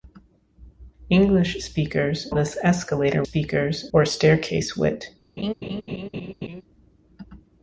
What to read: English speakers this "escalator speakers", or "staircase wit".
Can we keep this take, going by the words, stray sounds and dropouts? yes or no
no